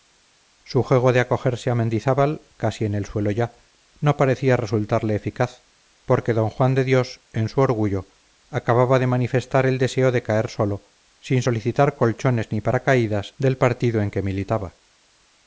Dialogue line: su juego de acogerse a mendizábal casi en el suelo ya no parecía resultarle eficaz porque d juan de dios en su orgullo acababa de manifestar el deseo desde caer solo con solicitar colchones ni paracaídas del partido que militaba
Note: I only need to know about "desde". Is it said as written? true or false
false